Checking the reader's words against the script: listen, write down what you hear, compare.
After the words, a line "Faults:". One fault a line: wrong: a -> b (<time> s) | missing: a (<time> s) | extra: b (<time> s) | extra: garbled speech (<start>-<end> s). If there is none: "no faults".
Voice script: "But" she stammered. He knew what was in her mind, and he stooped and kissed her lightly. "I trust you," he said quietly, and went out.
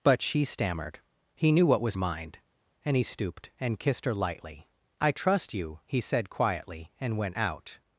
"But" she stammered. He knew what was mind, and he stooped and kissed her lightly. "I trust you," he said quietly, and went out.
Faults:
missing: in her (1.9 s)